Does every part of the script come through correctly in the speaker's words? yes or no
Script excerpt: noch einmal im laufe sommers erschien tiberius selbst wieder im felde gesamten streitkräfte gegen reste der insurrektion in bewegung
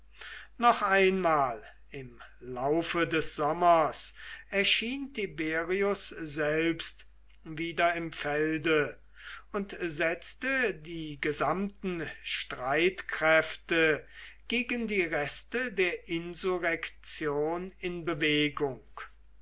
no